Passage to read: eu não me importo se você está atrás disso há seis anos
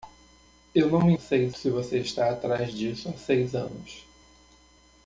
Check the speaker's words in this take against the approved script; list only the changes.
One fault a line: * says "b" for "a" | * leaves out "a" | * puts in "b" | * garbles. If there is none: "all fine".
* says "seis" for "importo"